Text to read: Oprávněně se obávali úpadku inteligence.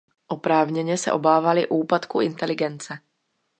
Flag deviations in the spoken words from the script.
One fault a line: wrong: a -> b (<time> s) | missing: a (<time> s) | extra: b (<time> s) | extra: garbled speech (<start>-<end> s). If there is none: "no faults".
no faults